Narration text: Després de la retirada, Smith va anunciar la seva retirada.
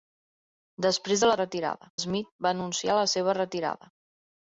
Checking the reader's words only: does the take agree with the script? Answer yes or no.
yes